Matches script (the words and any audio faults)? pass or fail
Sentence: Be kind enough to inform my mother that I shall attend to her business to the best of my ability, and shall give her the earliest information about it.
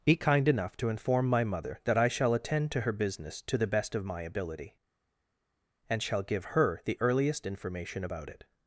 pass